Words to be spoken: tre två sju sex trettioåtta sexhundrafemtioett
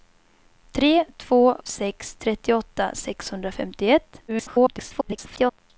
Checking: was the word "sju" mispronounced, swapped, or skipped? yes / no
yes